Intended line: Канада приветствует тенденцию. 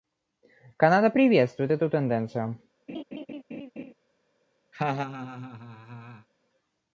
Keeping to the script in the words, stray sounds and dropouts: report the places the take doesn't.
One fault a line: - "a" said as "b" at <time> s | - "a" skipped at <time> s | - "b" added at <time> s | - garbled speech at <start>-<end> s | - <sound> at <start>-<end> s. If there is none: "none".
- "эту" added at 1.7 s
- laugh at 2.9-3.9 s
- laugh at 4.7-6.3 s